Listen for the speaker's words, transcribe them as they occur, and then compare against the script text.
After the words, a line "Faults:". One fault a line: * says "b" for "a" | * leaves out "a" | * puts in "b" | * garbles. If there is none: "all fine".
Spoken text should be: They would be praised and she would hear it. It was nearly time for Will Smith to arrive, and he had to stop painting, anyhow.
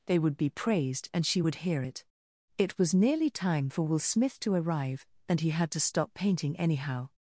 They would be praised and she would hear it. It was nearly time for Will Smith to arrive, and he had to stop painting, anyhow.
Faults:
all fine